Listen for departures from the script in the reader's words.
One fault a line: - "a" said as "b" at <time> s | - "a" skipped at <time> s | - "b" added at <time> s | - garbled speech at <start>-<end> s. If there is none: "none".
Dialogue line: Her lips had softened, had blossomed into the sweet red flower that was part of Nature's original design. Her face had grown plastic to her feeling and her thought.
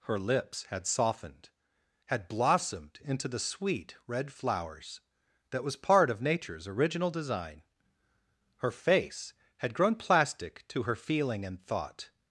- "flower" said as "flowers" at 4.3 s
- "her" skipped at 11.6 s